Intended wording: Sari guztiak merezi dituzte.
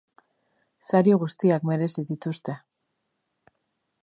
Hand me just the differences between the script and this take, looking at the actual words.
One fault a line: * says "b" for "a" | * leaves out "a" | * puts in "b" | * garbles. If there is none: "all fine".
all fine